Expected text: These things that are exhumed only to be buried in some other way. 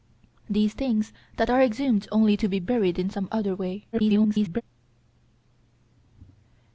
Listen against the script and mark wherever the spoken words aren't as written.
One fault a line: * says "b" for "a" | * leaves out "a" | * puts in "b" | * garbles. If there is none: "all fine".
* garbles